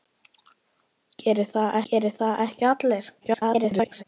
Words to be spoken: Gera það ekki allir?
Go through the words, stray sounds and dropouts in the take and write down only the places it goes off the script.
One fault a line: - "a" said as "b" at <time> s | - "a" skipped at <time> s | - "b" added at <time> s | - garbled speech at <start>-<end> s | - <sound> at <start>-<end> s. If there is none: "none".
- "gera það" added at 1.9 s
- garbled speech at 3.2-4.0 s